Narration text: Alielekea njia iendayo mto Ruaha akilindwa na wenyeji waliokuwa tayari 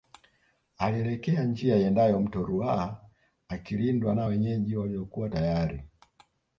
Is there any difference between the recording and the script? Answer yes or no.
no